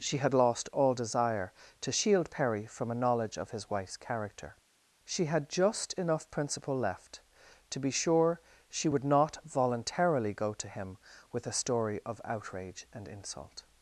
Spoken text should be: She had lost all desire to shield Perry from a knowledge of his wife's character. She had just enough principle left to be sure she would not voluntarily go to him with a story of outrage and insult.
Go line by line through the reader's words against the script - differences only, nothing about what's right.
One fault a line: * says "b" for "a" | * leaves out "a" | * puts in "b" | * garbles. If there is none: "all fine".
all fine